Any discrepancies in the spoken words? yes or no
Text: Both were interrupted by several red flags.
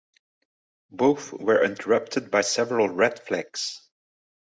no